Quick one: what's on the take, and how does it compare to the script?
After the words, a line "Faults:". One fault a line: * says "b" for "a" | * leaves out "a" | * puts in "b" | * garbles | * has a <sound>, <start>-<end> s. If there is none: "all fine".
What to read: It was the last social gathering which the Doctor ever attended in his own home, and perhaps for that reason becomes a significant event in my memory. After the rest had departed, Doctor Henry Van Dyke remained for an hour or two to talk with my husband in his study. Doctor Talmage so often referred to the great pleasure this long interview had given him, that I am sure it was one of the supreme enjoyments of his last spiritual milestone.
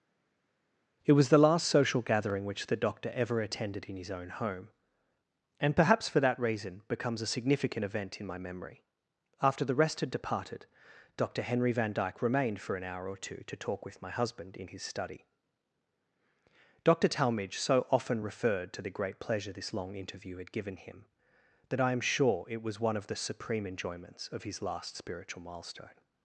It was the last social gathering which the Doctor ever attended in his own home, and perhaps for that reason becomes a significant event in my memory. After the rest had departed, Doctor Henry Van Dyke remained for an hour or two to talk with my husband in his study. Doctor Talmage so often referred to the great pleasure this long interview had given him, that I am sure it was one of the supreme enjoyments of his last spiritual milestone.
Faults:
all fine